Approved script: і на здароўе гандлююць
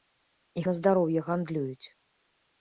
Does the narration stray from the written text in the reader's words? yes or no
no